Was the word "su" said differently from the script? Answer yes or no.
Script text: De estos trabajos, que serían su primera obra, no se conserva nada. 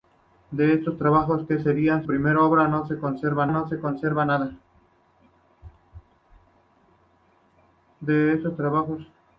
yes